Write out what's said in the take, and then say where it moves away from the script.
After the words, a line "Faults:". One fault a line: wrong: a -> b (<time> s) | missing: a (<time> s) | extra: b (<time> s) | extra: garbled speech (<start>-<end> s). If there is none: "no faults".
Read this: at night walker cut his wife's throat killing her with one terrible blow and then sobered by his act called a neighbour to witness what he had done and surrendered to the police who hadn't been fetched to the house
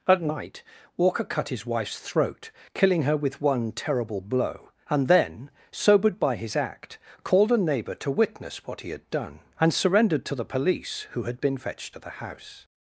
at night walker cut his wife's throat killing her with one terrible blow and then sobered by his act called a neighbour to witness what he had done and surrendered to the police who had been fetched to the house
Faults:
wrong: hadn't -> had (11.2 s)